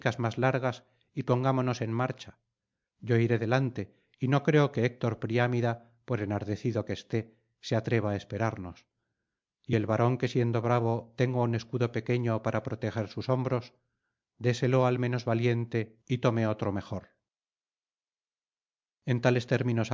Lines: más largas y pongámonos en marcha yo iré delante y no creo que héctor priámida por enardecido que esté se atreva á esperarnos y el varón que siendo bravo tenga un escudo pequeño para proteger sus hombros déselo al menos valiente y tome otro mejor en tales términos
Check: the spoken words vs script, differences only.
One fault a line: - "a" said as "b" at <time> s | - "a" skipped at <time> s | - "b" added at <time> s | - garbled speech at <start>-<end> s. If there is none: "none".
none